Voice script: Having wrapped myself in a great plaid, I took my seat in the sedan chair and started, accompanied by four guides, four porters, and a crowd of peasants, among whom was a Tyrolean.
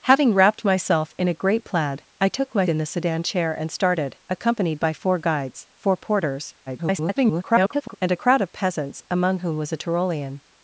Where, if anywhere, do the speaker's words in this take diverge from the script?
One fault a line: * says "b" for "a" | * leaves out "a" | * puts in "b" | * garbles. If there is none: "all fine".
* leaves out "seat"
* garbles